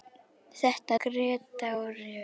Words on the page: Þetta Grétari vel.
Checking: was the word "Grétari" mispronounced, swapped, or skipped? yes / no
no